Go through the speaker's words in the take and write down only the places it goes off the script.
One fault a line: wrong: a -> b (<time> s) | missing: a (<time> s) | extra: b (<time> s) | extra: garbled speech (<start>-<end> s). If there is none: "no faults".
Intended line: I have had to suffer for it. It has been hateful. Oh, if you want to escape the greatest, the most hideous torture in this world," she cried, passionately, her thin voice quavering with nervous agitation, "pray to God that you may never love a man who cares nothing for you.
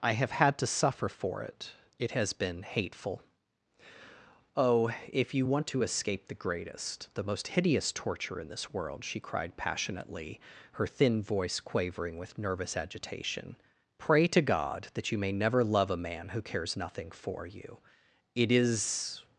extra: It is (18.3 s)